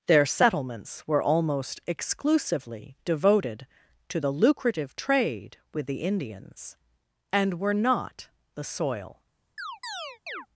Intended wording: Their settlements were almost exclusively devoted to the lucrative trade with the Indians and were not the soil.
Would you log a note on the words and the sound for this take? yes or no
yes